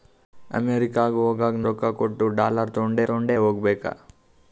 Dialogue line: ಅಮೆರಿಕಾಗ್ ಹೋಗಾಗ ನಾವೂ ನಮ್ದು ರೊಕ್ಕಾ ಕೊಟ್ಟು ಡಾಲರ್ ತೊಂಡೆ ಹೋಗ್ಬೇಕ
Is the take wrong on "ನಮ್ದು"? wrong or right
wrong